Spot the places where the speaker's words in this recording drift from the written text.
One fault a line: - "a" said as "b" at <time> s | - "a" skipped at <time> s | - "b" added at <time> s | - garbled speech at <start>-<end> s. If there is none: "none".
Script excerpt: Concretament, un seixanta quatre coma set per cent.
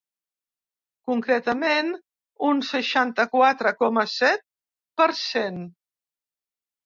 none